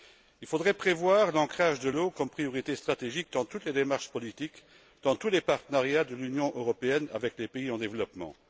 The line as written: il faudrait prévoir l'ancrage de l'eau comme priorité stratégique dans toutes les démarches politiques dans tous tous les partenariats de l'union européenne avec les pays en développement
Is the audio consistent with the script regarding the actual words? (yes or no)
no